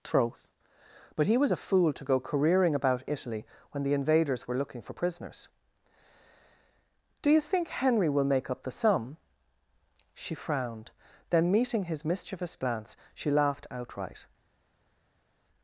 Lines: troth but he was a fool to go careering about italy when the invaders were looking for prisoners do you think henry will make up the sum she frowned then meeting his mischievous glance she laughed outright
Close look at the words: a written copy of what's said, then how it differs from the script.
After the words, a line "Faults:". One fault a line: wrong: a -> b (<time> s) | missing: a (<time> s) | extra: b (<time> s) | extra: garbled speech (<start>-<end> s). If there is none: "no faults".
troth but he was a fool to go careering about italy when the invaders were looking for prisoners do you think henry will make up the sum she frowned then meeting his mischievous glance she laughed outright
Faults:
no faults